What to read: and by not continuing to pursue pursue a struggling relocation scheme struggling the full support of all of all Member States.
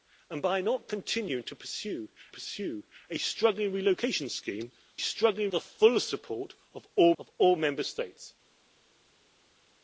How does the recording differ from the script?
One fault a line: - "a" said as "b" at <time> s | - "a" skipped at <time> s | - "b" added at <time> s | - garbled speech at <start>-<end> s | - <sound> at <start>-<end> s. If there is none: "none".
none